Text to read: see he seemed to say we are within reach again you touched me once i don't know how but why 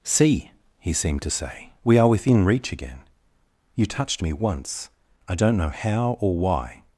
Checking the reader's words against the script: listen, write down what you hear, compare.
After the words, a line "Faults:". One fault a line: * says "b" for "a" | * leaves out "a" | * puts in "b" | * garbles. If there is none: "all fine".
see he seemed to say we are within reach again you touched me once i don't know how or why
Faults:
* says "or" for "but"